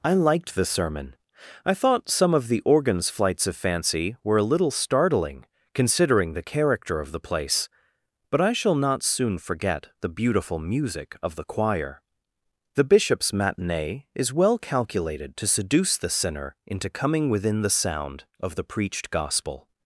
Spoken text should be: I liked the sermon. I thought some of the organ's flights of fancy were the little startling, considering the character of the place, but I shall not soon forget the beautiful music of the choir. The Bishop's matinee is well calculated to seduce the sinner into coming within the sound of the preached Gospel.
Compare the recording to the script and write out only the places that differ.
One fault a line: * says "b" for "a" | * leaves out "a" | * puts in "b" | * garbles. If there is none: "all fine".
* says "a" for "the"